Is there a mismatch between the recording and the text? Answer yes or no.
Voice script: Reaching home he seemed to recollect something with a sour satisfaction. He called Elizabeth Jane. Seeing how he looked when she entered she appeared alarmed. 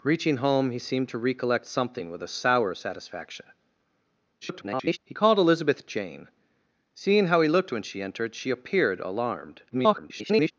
yes